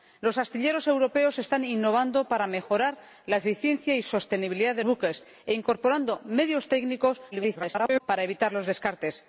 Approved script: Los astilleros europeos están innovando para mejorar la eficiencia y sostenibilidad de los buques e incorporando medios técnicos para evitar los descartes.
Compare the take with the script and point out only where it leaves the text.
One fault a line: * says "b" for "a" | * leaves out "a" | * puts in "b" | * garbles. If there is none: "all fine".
* leaves out "los"
* garbles